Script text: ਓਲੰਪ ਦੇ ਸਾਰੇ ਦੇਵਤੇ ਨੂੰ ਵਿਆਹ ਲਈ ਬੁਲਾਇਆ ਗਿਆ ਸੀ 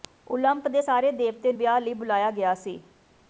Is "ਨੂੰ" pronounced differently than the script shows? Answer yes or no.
yes